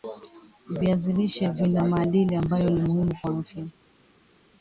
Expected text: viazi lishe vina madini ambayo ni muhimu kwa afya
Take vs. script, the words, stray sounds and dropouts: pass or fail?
pass